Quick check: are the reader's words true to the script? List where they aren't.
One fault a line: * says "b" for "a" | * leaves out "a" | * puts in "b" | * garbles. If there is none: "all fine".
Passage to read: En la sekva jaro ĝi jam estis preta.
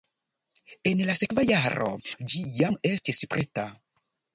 all fine